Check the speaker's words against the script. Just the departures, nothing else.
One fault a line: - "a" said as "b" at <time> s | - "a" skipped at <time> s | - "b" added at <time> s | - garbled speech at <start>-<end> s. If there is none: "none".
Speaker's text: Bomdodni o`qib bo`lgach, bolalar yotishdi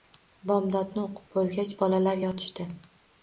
none